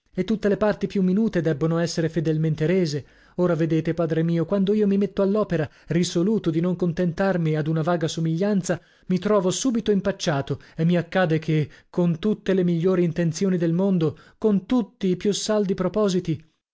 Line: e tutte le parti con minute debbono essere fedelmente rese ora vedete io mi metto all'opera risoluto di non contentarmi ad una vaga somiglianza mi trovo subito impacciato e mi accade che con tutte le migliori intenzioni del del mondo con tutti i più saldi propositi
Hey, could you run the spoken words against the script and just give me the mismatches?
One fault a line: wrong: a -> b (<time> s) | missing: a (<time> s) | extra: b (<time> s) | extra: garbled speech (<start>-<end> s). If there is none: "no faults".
wrong: con -> più (0.9 s)
extra: padre mio quando (3.9 s)
missing: del (13.7 s)